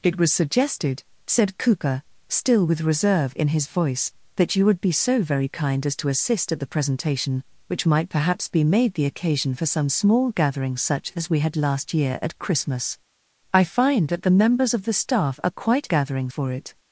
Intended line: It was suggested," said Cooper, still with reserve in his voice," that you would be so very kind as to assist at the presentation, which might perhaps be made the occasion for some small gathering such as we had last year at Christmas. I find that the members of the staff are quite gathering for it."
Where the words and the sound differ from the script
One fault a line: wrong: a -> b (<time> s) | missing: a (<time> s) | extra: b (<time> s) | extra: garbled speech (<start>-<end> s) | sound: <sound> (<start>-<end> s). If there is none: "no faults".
no faults